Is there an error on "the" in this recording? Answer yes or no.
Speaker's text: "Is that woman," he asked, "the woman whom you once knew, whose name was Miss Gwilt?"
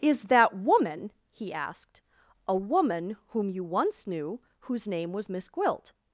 yes